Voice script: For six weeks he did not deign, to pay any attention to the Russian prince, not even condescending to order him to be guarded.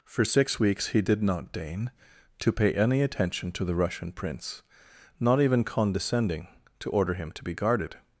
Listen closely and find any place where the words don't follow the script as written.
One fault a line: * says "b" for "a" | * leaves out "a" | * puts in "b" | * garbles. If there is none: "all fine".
all fine